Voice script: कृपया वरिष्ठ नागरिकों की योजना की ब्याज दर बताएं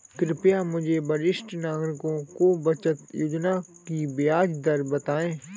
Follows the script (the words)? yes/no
no